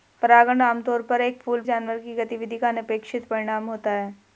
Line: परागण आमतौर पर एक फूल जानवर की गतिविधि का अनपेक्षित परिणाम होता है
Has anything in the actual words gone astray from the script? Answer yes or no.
no